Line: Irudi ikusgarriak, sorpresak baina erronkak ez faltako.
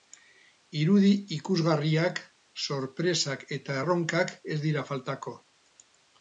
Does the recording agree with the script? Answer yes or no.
no